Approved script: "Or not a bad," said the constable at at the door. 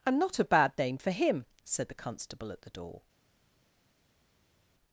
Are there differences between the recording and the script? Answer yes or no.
yes